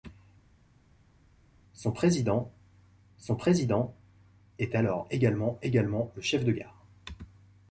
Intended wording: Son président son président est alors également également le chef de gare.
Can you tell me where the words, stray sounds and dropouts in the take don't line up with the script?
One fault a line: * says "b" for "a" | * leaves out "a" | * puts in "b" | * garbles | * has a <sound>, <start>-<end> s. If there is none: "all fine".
all fine